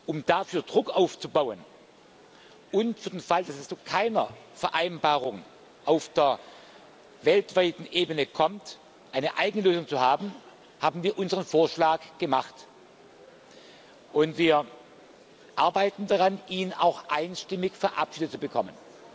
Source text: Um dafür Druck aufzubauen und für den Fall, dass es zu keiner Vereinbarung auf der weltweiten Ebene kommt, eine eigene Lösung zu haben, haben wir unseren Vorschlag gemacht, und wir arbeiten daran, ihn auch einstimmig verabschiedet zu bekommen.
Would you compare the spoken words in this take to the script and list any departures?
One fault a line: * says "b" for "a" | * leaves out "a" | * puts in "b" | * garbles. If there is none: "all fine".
all fine